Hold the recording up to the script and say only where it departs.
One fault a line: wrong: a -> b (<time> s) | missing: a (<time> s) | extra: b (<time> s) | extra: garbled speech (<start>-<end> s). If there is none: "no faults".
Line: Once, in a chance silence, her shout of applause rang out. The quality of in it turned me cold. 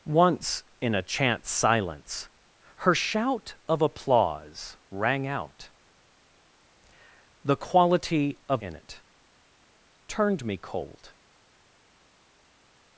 no faults